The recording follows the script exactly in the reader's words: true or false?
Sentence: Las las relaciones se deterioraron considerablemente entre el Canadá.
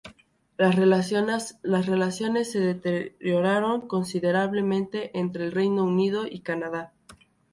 false